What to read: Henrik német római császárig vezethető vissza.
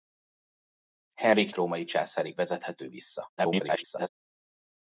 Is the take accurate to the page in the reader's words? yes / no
no